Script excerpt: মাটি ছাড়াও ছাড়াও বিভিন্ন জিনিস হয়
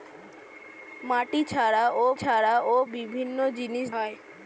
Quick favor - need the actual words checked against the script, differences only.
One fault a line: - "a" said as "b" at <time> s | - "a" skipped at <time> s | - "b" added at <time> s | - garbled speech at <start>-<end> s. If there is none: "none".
none